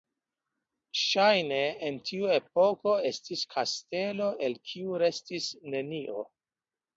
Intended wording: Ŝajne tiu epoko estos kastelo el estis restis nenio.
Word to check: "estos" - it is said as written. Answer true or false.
false